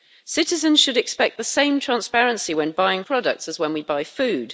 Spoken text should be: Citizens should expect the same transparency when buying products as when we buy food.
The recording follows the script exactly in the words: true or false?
true